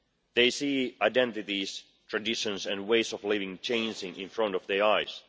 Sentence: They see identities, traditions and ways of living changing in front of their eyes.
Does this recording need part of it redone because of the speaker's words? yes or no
no